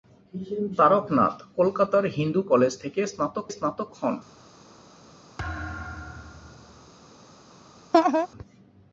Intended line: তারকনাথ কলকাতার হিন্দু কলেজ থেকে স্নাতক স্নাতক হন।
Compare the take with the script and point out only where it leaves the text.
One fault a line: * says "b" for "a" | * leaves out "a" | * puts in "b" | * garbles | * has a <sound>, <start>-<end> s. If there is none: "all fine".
* has a thud, 5.4-6.9 s
* has a laugh, 7.9-8.3 s